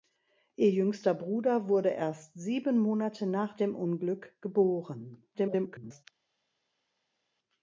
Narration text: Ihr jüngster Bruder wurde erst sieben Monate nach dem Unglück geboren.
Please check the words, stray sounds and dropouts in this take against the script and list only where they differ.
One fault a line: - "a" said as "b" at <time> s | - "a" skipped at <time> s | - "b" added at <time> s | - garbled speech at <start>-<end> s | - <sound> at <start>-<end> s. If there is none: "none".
- garbled speech at 5.3-6.0 s